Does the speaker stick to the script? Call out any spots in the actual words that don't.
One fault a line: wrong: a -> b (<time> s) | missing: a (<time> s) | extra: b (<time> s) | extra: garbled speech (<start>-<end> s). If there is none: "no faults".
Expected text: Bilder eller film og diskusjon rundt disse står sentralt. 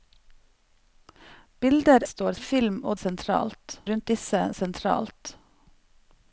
wrong: eller -> står (2.1 s)
wrong: diskusjon -> sentralt (3.0 s)
missing: står (4.4 s)